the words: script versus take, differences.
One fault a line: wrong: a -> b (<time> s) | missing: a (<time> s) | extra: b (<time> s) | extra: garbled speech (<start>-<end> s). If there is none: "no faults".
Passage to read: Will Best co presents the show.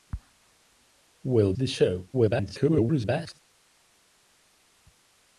missing: Best co presents (1.5 s)
extra: garbled speech (2.1-3.4 s)